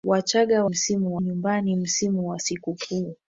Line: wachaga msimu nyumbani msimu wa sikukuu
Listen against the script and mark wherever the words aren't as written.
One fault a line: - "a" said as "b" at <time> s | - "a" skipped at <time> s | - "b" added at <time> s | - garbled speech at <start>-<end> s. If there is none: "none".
none